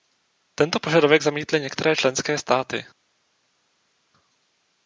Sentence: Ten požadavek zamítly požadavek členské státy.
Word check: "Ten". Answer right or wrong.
wrong